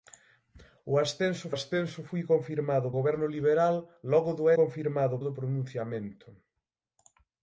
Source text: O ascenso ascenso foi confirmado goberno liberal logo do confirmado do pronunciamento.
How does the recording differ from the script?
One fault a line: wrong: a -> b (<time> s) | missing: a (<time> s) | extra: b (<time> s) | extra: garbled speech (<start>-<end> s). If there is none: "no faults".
no faults